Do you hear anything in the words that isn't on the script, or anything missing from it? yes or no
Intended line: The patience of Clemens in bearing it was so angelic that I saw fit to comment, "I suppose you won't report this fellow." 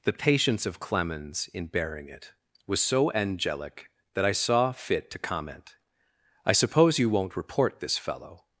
no